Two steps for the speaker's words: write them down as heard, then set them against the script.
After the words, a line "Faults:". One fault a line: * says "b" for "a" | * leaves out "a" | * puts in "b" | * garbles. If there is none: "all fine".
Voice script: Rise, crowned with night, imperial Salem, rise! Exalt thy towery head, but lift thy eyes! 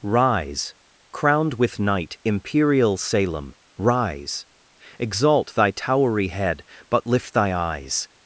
Rise, crowned with night, imperial Salem, rise! Exalt thy towery head, but lift thy eyes!
Faults:
all fine